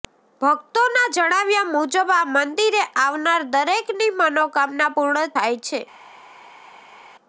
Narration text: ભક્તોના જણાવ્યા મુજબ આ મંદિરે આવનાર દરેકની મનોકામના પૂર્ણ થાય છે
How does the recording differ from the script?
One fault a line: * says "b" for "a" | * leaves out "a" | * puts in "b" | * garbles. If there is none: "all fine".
all fine